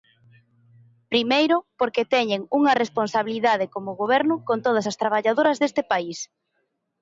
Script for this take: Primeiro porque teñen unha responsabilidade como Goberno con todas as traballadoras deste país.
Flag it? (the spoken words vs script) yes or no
no